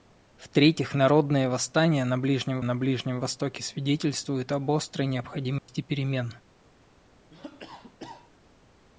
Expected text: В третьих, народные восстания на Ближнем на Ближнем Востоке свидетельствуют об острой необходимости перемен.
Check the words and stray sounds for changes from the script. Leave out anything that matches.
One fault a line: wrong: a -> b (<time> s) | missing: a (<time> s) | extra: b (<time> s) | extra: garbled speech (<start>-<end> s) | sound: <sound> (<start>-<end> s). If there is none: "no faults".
sound: dropout (5.6-5.7 s)
sound: cough (7.3-8.3 s)